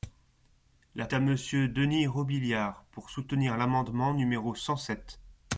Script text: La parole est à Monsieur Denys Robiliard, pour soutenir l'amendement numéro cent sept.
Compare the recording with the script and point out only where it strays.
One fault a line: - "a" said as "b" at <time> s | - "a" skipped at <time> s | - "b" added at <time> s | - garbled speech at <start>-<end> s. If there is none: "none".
- "parole est" skipped at 1.1 s